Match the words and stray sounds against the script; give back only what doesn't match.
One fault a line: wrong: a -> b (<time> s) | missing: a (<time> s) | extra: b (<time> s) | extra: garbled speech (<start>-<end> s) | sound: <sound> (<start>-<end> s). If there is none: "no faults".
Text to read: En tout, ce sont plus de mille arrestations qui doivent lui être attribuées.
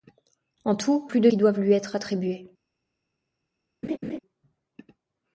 missing: ce sont (1.1 s)
missing: mille arrestations (1.3 s)
sound: laugh (3.8-4.2 s)